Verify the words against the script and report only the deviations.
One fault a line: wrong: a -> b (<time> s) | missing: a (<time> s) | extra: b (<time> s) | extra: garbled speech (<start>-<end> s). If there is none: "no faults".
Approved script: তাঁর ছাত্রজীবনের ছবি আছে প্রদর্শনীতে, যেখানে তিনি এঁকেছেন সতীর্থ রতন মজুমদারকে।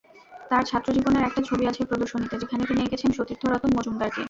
extra: একটা (1.3 s)